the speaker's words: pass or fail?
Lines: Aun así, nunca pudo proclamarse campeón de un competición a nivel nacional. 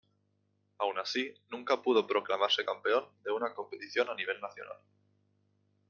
fail